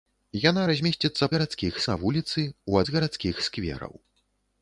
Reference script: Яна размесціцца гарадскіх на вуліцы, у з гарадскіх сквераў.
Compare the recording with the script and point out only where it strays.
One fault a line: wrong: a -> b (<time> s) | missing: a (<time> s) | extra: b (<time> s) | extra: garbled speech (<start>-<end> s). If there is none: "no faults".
no faults